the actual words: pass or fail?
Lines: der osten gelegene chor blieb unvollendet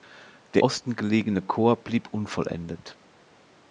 pass